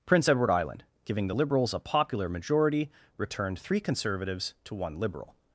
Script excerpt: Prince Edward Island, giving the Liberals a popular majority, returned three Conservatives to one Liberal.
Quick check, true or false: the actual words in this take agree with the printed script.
true